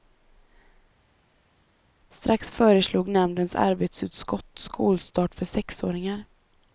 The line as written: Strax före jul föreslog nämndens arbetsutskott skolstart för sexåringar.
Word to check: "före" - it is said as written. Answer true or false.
false